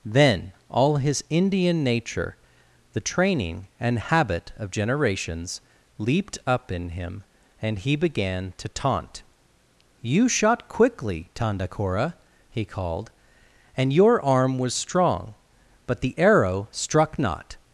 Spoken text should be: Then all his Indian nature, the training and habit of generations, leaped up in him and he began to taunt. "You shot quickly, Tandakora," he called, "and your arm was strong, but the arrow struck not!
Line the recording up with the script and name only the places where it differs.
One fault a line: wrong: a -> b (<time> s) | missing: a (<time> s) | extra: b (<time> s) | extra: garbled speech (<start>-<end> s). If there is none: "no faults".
no faults